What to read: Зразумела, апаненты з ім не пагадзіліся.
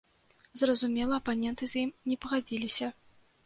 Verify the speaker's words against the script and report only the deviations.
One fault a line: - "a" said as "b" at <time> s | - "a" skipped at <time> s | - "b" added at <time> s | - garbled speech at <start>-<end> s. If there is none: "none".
none